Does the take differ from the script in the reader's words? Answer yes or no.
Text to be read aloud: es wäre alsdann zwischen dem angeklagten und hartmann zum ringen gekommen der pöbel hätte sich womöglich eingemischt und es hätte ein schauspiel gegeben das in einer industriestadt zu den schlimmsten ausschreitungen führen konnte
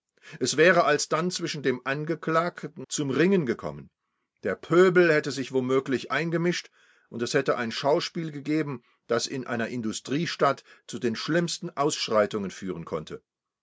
yes